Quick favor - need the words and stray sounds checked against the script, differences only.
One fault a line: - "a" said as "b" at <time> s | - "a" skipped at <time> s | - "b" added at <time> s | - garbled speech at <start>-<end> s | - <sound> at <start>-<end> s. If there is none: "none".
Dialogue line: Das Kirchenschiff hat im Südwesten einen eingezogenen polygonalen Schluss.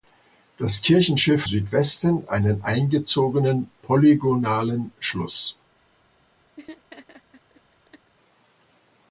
- "hat im" skipped at 1.5 s
- laugh at 6.6-8.1 s